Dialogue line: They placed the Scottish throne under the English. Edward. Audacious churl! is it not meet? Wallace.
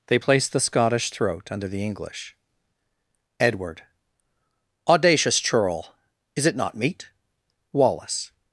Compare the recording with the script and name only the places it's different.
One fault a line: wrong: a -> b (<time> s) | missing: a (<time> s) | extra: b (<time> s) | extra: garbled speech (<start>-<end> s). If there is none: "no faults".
wrong: throne -> throat (1.1 s)